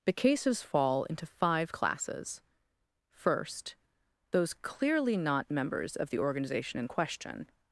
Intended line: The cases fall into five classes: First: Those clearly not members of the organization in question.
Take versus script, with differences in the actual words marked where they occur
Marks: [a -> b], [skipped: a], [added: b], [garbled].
The cases fall into five classes: First: Those clearly not members of the organization in question.